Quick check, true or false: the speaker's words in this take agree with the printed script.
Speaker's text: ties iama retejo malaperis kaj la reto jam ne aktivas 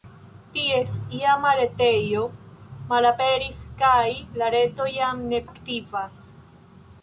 true